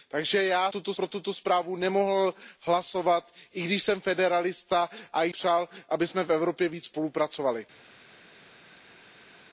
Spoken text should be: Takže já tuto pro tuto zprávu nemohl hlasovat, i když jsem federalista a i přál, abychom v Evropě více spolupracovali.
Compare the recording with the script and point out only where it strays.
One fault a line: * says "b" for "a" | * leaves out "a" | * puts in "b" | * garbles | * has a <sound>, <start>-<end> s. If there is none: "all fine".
all fine